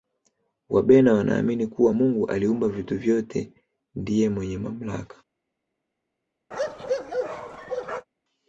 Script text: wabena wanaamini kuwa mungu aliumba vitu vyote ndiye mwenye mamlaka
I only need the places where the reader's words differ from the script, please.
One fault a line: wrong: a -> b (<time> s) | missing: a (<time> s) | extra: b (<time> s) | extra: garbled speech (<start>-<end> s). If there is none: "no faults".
no faults